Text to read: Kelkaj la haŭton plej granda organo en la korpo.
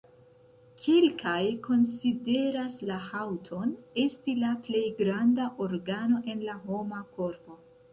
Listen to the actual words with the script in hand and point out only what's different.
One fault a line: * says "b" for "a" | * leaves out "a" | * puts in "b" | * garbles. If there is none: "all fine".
* puts in "konsideras"
* puts in "esti la"
* puts in "homa"